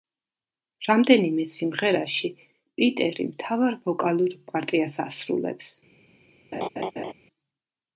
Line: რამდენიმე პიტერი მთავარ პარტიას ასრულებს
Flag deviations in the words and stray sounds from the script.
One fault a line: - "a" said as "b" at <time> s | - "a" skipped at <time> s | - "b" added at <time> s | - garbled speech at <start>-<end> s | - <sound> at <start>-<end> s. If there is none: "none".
- "სიმღერაში" added at 1.6 s
- "ვოკალურ" added at 3.9 s
- laugh at 6.5-7.1 s